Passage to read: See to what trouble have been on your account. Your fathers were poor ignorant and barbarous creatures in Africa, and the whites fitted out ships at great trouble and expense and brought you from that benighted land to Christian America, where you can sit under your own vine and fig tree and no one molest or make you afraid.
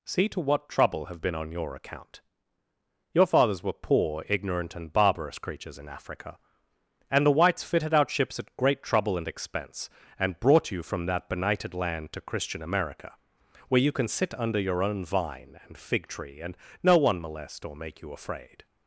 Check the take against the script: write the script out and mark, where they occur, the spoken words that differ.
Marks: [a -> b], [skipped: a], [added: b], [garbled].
See to what trouble have been on your account. Your fathers were poor ignorant and barbarous creatures in Africa, and the whites fitted out ships at great trouble and expense and brought you from that benighted land to Christian America, where you can sit under your own vine and fig tree and no one molest or make you afraid.